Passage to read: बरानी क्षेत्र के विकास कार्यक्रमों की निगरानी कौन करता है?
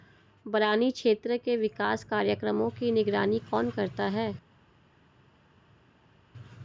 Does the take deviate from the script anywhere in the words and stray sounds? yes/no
no